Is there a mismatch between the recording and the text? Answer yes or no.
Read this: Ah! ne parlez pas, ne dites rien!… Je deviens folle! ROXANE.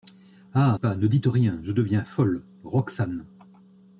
yes